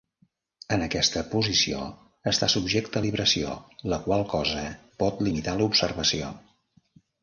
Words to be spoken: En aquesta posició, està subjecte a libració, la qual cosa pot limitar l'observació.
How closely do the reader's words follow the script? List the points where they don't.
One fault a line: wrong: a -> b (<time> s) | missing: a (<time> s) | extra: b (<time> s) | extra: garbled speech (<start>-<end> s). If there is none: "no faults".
no faults